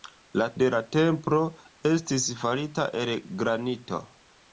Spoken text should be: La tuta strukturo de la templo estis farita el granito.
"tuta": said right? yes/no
no